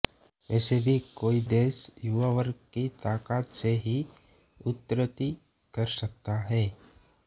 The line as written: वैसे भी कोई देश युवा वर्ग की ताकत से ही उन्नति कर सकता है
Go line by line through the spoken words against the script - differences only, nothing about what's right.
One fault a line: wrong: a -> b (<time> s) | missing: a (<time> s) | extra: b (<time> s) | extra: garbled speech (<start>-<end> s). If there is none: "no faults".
no faults